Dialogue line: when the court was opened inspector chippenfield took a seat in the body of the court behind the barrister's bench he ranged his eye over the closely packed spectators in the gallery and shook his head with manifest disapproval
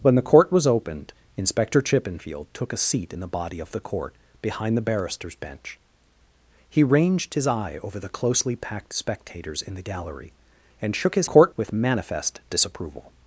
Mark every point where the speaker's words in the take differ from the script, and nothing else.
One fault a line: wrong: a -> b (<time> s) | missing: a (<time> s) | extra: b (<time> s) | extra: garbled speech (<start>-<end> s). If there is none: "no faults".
wrong: head -> court (11.3 s)